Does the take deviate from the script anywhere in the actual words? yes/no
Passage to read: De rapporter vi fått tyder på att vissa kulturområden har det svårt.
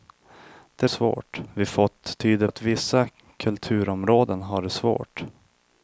yes